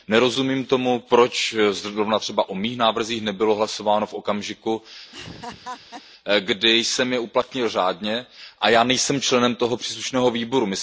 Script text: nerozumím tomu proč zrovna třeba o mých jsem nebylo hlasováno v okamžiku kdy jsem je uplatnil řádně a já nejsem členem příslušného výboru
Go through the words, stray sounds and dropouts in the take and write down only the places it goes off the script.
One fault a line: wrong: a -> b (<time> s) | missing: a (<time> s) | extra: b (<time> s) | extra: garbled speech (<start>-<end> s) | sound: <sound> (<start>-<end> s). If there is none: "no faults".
wrong: jsem -> návrzích (2.8 s)
sound: laugh (5.1-6.0 s)
extra: toho (9.5 s)